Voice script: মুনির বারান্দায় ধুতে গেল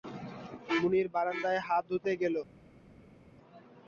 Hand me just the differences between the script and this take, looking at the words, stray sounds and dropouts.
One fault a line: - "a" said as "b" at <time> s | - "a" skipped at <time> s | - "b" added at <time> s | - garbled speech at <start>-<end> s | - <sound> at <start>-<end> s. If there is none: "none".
- "হাত" added at 1.6 s